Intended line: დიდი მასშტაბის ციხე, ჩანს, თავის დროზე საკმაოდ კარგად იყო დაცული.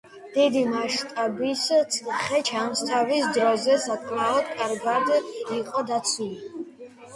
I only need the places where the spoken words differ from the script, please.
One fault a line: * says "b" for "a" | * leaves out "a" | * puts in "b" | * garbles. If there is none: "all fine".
all fine